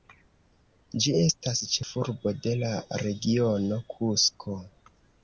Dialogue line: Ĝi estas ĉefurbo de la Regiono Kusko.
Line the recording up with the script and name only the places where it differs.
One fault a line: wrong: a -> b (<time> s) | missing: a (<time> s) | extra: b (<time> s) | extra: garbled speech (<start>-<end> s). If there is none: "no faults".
no faults